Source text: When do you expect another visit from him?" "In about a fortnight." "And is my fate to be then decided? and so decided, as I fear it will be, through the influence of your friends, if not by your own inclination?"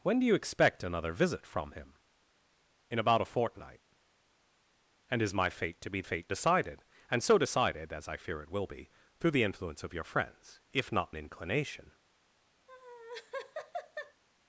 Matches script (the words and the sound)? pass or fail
fail